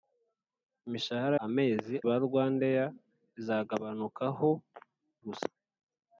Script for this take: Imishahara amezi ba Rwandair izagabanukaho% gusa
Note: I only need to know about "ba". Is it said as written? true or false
true